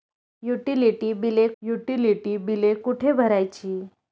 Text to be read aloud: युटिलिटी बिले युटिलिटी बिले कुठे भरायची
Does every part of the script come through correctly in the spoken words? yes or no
yes